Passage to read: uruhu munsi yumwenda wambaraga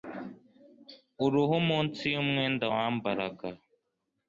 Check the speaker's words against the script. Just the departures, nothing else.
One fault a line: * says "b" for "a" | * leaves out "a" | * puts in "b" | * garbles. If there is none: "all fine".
all fine